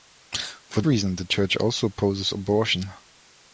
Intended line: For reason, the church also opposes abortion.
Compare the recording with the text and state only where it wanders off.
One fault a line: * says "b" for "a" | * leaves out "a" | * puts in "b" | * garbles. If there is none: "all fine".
all fine